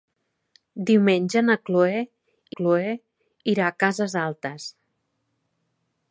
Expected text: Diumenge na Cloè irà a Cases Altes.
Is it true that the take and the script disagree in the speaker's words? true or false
true